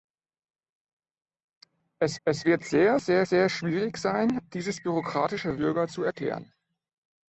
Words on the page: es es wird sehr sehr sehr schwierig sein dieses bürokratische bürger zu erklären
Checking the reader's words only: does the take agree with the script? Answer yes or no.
yes